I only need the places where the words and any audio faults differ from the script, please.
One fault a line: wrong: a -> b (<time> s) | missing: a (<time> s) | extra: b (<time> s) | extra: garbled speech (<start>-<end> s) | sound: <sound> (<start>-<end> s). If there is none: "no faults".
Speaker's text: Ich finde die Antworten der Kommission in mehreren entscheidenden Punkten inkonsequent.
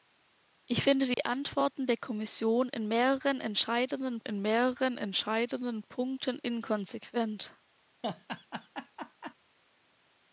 sound: dropout (1.1-1.2 s)
extra: in mehreren entscheidenden (4.2 s)
sound: laugh (8.0-9.3 s)